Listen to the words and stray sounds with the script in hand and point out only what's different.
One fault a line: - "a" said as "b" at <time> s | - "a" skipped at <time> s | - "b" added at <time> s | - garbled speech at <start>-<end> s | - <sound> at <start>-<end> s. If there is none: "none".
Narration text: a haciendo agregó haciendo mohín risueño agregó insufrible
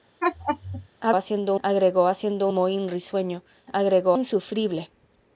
- laugh at 0.2-0.9 s